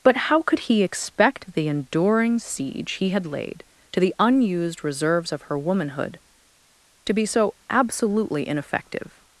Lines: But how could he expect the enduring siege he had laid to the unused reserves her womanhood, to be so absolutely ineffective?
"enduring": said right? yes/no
yes